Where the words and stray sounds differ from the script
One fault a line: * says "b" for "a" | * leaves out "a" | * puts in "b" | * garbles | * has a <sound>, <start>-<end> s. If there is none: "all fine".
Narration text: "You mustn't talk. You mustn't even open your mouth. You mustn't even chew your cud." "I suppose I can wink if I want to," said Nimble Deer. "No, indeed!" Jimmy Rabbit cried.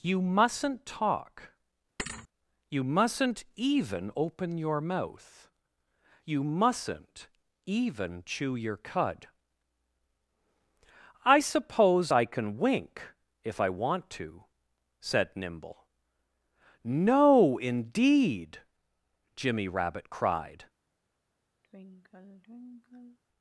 * has a thud, 2.0-2.3 s
* leaves out "Deer"
* has a sigh, 21.6-23.2 s